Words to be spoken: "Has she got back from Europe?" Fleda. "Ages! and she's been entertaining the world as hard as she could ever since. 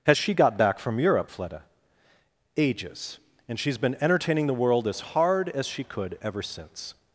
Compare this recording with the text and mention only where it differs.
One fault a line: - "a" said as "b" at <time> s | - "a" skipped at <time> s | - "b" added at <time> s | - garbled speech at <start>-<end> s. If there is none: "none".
none